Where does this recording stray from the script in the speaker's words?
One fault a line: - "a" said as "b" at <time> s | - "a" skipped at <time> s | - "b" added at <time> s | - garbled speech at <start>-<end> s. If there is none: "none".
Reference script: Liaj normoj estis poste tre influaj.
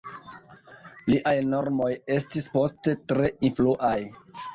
none